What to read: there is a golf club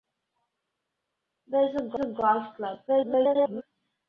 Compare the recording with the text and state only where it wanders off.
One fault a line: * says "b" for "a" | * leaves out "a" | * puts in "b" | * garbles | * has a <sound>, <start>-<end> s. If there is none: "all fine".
* puts in "a"
* garbles